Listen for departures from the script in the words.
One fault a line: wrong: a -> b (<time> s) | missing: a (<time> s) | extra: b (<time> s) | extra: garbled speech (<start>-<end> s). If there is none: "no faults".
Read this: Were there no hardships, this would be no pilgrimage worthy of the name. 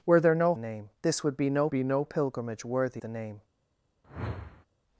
wrong: hardships -> name (0.6 s)
extra: be no (1.7 s)
missing: of (3.0 s)